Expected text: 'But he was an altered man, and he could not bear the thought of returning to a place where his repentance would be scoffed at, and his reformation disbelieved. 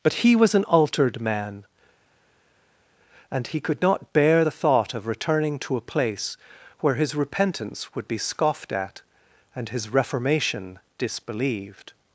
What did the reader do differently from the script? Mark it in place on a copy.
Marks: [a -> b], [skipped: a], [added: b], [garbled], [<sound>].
'But he was an altered man, and he could not bear the thought of returning to a place where his repentance would be scoffed at, and his reformation disbelieved.